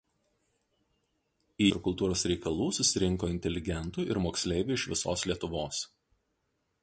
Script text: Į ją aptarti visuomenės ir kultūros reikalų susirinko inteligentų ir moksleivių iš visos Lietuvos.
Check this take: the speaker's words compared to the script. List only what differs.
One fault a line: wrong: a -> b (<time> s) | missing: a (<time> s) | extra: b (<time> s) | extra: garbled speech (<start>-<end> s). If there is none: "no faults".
missing: ją aptarti visuomenės (1.7 s)